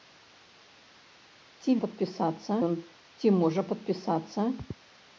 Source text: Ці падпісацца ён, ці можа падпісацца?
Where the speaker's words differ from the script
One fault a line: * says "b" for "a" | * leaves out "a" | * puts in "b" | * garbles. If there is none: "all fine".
all fine